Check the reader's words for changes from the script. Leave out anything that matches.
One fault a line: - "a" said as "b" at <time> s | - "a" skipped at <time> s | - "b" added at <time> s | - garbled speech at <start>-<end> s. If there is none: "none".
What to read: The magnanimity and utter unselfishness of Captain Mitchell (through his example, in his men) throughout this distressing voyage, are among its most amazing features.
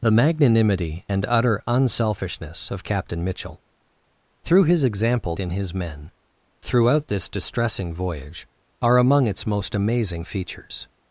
none